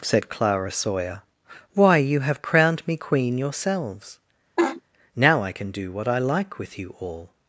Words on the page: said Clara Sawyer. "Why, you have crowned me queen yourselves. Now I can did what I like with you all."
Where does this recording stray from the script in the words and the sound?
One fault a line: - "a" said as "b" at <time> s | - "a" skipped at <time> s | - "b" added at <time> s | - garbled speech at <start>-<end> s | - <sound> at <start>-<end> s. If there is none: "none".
- laugh at 4.6-4.8 s
- "did" said as "do" at 5.7 s